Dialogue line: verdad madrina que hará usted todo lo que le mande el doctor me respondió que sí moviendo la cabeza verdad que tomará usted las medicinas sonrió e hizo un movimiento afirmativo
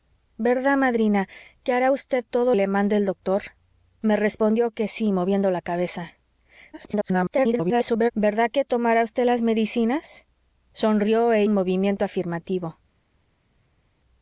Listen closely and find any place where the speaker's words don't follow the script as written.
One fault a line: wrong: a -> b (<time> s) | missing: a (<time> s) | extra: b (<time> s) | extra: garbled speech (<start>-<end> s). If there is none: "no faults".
missing: lo que (2.5 s)
extra: garbled speech (6.7-8.1 s)
missing: hizo (11.4 s)